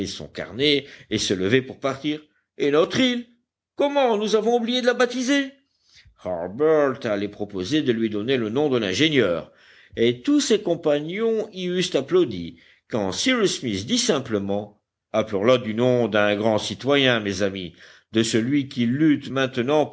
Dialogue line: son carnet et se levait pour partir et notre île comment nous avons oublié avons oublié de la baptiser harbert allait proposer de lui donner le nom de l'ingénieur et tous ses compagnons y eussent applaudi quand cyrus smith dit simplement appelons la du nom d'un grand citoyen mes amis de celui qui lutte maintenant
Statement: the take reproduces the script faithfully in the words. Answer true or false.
false